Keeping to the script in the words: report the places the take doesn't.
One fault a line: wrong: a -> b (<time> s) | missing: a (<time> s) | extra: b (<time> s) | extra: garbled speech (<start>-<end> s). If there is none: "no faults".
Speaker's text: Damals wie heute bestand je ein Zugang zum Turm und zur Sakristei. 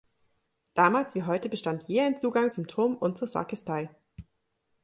no faults